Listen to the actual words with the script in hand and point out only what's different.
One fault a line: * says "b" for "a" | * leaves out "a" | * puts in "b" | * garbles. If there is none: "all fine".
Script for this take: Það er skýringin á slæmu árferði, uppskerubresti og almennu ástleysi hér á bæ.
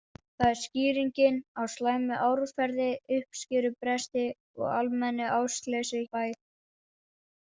* leaves out "hér"